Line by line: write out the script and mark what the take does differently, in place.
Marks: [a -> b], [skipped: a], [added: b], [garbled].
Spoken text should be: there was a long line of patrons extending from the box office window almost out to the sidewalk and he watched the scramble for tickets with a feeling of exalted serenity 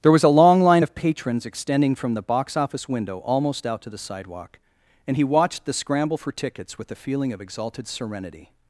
there was a long line of patrons extending from the box office window almost out to the sidewalk and he watched the scramble for tickets with a feeling of exalted serenity